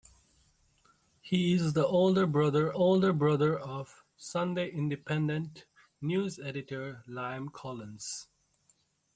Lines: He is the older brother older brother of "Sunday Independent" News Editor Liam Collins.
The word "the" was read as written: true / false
true